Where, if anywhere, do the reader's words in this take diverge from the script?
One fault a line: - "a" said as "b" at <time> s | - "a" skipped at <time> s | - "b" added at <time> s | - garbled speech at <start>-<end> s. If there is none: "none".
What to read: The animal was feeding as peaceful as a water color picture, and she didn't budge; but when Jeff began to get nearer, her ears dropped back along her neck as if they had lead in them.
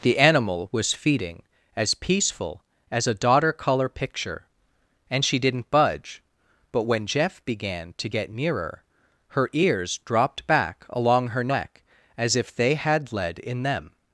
- "water" said as "daughter" at 3.1 s